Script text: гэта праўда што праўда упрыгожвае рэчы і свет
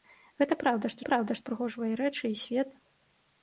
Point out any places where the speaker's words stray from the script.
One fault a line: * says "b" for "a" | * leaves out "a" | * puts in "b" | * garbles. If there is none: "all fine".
all fine